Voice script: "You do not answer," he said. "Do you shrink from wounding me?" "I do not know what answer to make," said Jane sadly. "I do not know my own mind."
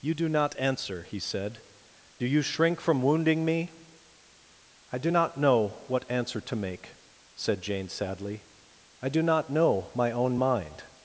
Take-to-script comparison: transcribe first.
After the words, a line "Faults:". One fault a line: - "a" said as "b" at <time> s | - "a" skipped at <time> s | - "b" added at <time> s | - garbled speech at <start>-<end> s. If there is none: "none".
"You do not answer," he said. "Do you shrink from wounding me?" "I do not know what answer to make," said Jane sadly. "I do not know my own mind."
Faults:
none